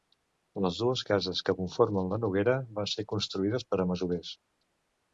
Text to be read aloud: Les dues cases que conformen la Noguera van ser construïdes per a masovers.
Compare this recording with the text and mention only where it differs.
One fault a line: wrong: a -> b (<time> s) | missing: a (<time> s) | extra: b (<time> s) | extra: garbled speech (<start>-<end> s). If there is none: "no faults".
no faults